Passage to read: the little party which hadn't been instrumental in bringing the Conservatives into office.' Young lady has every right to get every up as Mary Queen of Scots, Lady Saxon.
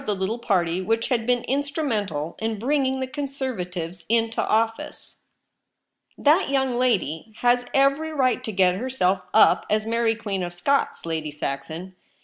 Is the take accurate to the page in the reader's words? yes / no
no